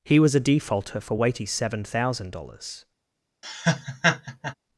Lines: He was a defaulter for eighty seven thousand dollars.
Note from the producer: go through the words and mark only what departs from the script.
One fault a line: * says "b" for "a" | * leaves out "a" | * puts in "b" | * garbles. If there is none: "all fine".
* says "weighty" for "eighty"